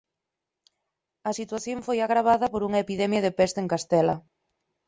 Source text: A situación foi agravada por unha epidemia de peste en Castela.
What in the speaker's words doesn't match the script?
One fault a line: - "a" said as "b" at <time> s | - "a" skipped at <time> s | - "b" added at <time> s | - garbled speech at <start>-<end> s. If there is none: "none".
none